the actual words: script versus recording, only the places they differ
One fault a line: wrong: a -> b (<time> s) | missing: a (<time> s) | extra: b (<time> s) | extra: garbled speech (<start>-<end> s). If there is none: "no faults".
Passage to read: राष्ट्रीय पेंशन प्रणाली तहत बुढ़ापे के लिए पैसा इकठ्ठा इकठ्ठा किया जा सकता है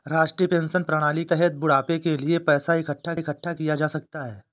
no faults